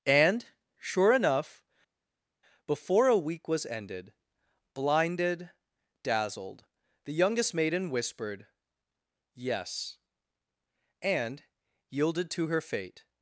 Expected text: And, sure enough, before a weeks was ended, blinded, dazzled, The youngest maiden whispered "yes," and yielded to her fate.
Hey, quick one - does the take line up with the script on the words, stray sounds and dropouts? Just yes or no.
no